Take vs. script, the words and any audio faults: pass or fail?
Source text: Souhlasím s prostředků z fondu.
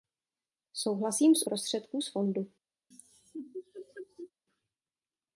fail